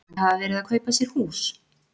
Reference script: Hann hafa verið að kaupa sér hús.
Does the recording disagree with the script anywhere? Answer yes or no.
no